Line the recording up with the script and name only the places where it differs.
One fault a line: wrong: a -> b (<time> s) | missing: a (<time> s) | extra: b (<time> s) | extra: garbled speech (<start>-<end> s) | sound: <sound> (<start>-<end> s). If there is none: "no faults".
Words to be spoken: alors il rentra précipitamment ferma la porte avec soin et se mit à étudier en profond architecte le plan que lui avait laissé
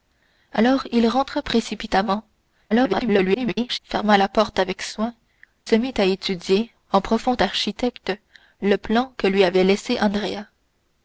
extra: garbled speech (2.7-3.8 s)
missing: et (5.1 s)